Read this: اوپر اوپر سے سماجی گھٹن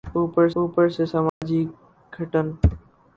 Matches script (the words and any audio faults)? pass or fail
fail